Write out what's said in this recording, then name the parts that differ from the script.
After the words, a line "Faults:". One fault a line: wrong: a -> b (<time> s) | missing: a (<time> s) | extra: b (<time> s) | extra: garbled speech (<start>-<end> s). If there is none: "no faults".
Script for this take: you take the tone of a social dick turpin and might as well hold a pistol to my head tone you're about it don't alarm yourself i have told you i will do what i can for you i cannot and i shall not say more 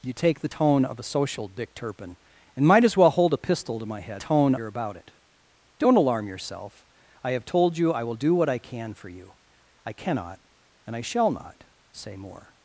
you take the tone of a social dick turpin and might as well hold a pistol to my head tone you're about it don't alarm yourself i have told you i will do what i can for you i cannot and i shall not say more
Faults:
no faults